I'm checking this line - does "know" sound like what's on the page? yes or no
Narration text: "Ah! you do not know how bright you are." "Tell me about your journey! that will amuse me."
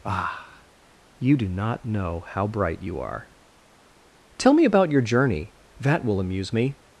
yes